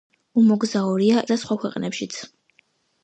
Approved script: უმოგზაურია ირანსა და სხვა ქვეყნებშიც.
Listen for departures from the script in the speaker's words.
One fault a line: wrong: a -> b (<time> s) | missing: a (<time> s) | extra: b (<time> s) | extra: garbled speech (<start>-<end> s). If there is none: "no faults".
missing: ირანსა (1.2 s)